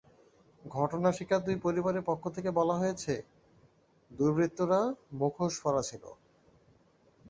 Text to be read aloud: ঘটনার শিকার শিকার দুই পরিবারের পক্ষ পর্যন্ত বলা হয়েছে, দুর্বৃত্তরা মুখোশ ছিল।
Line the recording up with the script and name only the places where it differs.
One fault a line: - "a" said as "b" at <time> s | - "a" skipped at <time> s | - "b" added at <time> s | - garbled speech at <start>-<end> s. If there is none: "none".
- "শিকার" skipped at 1.4 s
- "পর্যন্ত" said as "থেকে" at 2.3 s
- "পরা" added at 5.6 s